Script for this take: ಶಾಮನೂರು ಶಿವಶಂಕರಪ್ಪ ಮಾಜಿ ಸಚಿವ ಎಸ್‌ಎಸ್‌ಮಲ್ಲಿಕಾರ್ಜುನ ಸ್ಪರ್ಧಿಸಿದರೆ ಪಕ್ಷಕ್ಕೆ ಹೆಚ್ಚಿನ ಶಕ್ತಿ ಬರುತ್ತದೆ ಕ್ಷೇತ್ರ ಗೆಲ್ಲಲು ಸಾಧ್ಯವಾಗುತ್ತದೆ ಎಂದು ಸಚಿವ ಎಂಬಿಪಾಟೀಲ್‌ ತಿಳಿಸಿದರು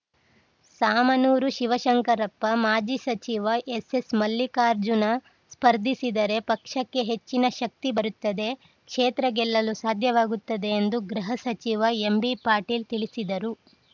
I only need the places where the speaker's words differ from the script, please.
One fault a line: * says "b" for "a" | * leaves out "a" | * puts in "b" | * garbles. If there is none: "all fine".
* puts in "ಗೃಹ"